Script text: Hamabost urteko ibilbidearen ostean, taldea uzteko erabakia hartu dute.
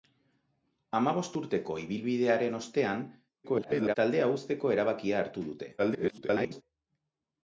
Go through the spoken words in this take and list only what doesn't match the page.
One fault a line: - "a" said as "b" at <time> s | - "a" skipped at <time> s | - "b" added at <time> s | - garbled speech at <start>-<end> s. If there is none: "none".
- garbled speech at 3.4-4.0 s
- garbled speech at 5.8-6.6 s